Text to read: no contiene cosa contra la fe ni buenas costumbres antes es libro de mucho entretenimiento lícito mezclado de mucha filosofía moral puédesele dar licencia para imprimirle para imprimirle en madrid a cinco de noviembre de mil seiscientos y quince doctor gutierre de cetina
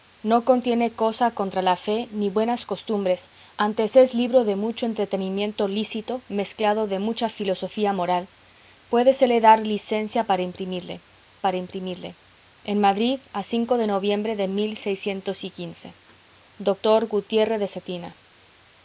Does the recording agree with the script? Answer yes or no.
yes